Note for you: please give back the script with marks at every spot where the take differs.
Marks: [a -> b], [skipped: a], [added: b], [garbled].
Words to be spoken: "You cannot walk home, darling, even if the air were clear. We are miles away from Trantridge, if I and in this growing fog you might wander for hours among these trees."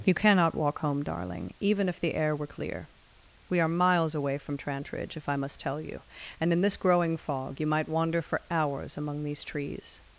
"You cannot walk home, darling, even if the air were clear. We are miles away from Trantridge, if I [added: must tell you] and in this growing fog you might wander for hours among these trees."